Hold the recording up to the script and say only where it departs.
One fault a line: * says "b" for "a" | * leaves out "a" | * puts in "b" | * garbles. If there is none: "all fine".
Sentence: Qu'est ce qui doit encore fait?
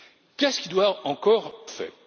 all fine